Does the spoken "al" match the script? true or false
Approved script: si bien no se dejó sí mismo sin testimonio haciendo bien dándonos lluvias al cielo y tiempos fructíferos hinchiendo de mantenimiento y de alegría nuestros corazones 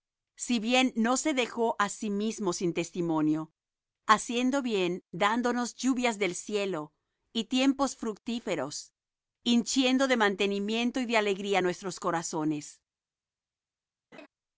false